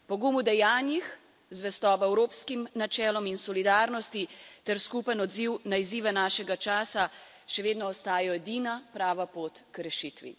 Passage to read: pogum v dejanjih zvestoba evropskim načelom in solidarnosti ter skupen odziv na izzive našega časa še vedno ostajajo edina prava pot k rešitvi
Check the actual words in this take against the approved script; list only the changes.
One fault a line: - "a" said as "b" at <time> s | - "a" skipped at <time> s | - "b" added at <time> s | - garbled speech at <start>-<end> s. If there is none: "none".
none